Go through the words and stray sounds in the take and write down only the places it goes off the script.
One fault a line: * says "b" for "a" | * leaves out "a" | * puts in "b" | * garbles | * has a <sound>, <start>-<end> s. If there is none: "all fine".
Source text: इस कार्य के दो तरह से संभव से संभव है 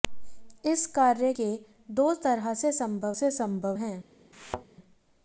* has a thud, 4.3-4.7 s